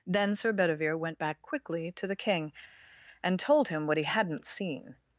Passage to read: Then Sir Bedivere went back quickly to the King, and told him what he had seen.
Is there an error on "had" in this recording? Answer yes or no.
yes